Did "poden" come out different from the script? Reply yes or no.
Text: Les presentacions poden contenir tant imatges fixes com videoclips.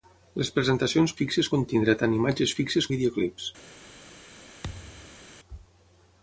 yes